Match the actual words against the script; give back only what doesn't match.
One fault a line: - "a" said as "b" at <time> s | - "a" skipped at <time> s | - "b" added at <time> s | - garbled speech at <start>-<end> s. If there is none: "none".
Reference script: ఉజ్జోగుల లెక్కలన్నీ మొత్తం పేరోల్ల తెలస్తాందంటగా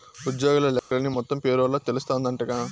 none